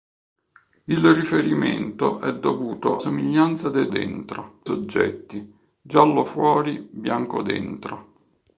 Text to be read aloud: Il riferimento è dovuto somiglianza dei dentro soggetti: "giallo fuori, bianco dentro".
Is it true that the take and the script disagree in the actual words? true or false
false